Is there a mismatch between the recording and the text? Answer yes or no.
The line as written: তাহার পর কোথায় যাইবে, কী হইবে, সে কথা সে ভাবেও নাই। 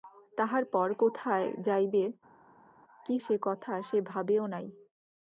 yes